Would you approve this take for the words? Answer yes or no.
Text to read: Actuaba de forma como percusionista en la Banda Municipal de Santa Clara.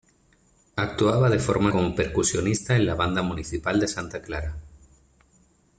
yes